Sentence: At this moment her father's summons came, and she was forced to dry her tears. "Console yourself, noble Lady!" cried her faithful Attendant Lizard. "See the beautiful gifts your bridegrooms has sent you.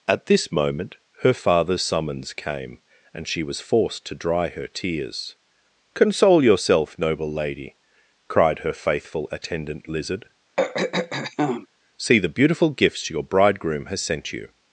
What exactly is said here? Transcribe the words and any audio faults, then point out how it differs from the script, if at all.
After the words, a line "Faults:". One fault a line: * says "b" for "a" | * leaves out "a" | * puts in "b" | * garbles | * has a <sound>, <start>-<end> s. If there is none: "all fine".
At this moment her father's summons came, and she was forced to dry her tears. "Console yourself, noble Lady!" cried her faithful Attendant Lizard. "See the beautiful gifts your bridegroom has sent you.
Faults:
* has a throat clearing, 10.6-11.7 s
* says "bridegroom" for "bridegrooms"